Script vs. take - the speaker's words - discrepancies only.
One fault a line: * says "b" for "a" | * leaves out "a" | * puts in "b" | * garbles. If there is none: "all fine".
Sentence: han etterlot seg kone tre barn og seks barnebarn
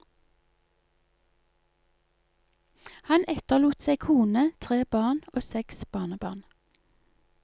all fine